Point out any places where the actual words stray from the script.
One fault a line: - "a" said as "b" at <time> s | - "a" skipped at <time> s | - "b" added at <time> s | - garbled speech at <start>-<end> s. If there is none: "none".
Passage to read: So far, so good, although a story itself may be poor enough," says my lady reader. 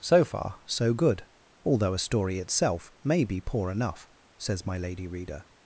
none